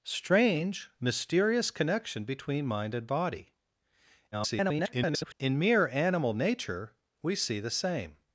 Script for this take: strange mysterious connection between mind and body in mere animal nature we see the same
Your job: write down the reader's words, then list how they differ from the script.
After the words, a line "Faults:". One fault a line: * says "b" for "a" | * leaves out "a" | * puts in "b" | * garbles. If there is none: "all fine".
strange mysterious connection between mind and body [garbled] in mere animal nature we see the same
Faults:
* garbles